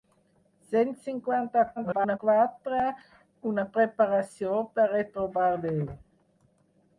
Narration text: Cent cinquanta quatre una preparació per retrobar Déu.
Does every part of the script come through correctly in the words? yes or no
no